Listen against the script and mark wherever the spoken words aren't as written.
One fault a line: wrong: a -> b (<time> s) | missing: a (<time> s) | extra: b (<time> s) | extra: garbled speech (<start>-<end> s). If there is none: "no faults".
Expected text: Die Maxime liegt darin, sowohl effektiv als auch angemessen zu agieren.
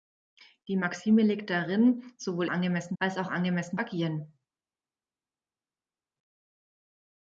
wrong: effektiv -> angemessen (2.5 s)
missing: zu (3.8 s)